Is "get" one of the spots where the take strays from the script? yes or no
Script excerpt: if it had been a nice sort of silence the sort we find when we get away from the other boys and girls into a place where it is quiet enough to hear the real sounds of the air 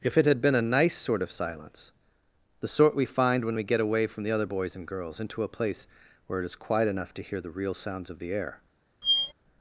no